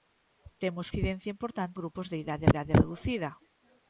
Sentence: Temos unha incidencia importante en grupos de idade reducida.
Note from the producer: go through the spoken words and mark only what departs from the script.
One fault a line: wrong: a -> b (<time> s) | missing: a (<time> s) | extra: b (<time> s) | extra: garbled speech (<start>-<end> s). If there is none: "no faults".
missing: unha (0.9 s)
missing: en (1.8 s)
extra: idade (2.5 s)